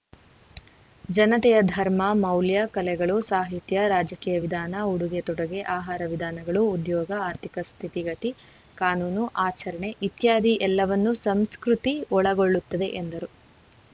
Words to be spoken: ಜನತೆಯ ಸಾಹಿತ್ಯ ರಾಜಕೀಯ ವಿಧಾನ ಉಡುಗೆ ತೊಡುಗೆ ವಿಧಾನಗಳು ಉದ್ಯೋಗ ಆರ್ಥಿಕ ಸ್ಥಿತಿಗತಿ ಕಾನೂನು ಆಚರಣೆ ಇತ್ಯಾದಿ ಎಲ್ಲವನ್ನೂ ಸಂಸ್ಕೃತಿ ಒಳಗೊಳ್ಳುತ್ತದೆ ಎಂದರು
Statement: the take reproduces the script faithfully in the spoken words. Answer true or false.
false